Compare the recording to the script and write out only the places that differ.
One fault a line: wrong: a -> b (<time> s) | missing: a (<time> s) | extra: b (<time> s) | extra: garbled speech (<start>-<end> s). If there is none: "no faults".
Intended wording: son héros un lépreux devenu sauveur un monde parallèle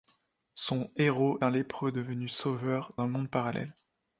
no faults